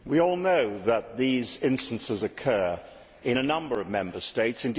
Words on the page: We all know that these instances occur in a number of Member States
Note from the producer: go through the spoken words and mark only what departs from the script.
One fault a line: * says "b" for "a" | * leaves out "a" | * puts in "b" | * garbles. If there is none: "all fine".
all fine